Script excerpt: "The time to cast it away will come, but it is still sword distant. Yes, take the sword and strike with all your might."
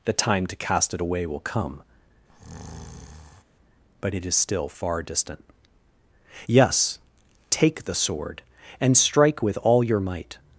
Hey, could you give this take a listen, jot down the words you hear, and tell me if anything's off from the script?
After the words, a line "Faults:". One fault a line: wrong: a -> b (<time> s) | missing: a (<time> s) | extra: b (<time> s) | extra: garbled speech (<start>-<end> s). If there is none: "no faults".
"The time to cast it away will come, but it is still far distant. Yes, take the sword and strike with all your might."
Faults:
wrong: sword -> far (4.7 s)